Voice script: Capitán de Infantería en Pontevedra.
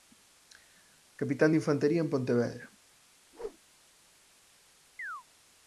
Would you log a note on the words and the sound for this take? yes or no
yes